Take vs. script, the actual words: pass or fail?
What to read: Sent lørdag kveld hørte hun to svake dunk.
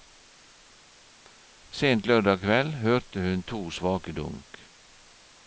pass